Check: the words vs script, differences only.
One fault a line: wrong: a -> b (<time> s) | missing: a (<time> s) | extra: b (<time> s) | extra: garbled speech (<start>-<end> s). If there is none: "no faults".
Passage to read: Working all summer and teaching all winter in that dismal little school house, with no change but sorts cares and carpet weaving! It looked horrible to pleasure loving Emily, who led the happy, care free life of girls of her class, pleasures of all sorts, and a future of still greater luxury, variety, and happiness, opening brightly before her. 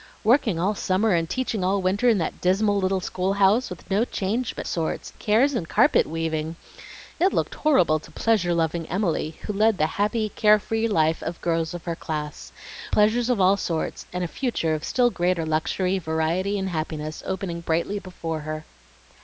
no faults